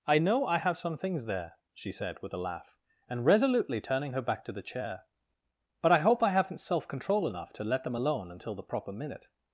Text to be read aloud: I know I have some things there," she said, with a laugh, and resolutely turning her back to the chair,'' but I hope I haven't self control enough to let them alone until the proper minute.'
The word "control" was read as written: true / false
true